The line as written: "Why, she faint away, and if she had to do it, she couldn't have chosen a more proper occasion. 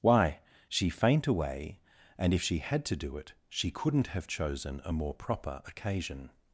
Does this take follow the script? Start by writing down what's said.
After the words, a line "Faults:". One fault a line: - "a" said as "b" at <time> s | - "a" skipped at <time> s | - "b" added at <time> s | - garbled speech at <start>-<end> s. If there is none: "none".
"Why, she faint away, and if she had to do it, she couldn't have chosen a more proper occasion.
Faults:
none